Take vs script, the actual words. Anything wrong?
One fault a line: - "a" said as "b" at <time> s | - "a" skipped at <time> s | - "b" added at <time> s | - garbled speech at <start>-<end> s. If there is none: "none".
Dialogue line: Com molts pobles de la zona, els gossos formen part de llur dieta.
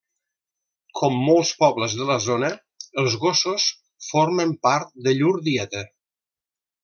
none